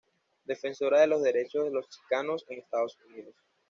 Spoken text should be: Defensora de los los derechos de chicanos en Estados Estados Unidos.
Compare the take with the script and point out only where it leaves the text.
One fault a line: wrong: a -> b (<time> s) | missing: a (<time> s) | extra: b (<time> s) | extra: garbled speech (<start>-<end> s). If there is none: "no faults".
missing: los (1.2 s)
extra: los (1.7 s)
missing: Estados (3.0 s)